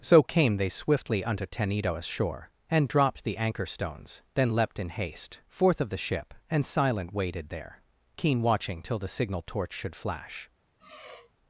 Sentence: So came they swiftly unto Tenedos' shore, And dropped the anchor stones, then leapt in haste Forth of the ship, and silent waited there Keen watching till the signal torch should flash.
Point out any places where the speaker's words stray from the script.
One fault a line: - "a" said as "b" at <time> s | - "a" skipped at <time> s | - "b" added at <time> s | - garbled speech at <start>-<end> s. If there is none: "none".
none